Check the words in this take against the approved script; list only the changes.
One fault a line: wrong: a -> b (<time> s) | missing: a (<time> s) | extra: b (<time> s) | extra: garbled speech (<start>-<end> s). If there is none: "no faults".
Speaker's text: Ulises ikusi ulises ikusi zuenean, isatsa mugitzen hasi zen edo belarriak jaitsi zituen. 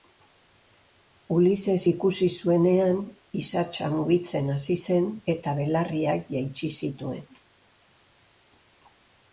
missing: ulises ikusi (2.3 s)
wrong: edo -> eta (5.4 s)